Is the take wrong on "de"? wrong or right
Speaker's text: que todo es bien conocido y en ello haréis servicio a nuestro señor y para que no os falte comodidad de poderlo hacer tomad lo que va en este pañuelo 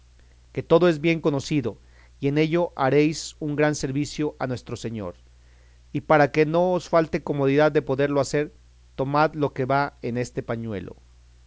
right